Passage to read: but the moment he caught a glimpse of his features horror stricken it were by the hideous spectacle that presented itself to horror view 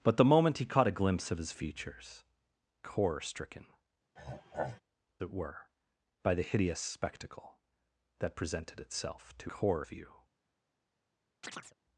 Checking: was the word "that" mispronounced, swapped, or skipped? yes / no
no